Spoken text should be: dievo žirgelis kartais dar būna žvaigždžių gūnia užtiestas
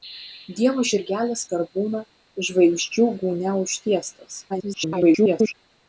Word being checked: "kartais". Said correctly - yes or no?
no